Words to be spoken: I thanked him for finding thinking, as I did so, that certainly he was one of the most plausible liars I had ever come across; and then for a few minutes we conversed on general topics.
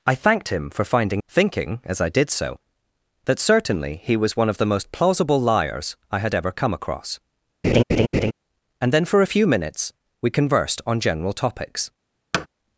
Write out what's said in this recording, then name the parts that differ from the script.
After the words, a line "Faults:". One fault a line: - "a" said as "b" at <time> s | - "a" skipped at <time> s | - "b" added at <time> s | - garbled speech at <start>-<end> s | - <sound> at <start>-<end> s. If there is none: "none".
I thanked him for finding thinking, as I did so, that certainly he was one of the most plausible liars I had ever come across; and then for a few minutes we conversed on general topics.
Faults:
- laugh at 7.6-8.3 s
- thud at 12.3-12.5 s